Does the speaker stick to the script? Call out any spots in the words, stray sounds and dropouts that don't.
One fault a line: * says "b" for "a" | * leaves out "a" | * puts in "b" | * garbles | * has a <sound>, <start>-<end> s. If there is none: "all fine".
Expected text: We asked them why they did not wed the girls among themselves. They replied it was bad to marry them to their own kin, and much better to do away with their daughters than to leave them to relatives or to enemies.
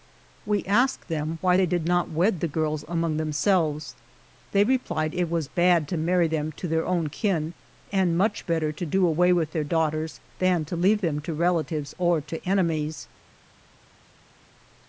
all fine